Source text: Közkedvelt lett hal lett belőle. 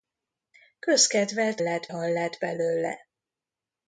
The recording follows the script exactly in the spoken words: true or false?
true